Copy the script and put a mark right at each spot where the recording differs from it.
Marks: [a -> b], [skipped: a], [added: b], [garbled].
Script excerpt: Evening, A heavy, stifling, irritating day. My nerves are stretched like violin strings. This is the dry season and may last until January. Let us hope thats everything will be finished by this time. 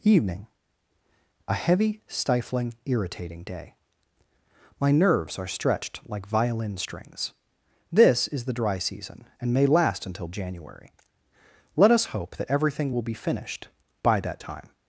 Evening, A heavy, stifling, irritating day. My nerves are stretched like violin strings. This is the dry season and may last until January. Let us hope [thats -> that] everything will be finished by [this -> that] time.